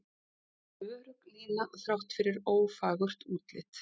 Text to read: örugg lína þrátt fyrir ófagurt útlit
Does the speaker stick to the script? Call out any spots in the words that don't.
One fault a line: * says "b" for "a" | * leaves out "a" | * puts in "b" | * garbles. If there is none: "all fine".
all fine